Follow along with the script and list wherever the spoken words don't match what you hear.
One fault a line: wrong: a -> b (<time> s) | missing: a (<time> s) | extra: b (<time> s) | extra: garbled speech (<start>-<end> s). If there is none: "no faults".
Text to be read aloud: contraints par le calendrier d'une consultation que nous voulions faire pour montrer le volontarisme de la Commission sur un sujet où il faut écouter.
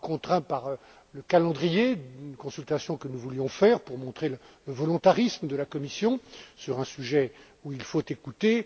no faults